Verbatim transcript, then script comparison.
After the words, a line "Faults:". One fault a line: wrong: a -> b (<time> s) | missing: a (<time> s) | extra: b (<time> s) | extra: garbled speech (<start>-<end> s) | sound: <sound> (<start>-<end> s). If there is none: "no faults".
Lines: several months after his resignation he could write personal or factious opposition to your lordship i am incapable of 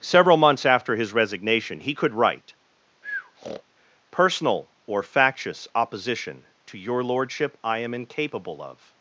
several months after his resignation he could write personal or factious opposition to your lordship i am incapable of
Faults:
sound: breath (3.0-3.6 s)